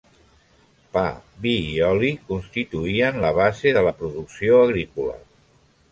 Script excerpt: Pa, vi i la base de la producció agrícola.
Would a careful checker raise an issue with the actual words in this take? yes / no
yes